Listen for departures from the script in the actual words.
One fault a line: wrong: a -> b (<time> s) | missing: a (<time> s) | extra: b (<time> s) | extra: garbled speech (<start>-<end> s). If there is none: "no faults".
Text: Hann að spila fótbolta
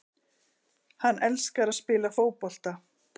extra: elskar (1.3 s)